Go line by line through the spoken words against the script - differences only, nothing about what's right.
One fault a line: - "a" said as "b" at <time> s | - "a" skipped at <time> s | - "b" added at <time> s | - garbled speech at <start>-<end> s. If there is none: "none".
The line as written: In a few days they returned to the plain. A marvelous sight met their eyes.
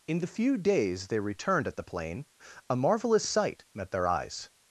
- "a" said as "the" at 0.2 s
- "to" said as "at" at 1.7 s